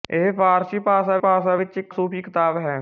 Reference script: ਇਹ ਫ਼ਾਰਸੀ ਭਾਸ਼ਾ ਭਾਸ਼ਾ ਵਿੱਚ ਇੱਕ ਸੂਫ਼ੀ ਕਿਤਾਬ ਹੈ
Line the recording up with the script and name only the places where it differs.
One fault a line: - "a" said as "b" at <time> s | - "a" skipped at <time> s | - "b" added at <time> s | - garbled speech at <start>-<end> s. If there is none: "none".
none